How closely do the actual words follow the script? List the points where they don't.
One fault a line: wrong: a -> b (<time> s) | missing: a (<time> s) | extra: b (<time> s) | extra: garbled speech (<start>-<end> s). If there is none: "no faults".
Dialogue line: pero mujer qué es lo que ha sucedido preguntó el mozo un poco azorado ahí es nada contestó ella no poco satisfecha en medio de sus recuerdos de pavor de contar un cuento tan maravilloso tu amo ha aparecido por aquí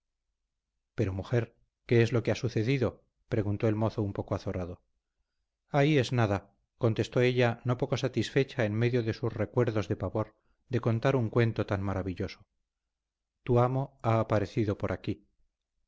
no faults